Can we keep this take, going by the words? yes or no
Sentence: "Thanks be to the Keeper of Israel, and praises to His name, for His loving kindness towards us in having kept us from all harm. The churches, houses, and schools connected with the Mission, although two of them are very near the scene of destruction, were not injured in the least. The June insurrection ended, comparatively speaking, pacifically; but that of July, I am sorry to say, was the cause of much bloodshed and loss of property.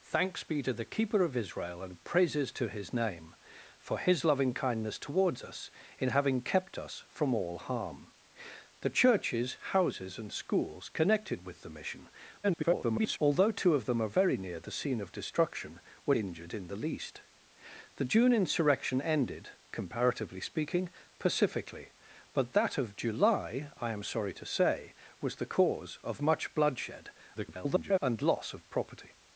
no